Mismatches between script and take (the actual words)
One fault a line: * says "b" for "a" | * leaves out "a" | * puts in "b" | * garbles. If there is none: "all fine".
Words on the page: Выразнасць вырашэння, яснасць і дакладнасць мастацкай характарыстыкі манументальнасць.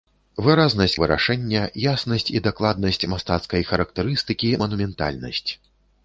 all fine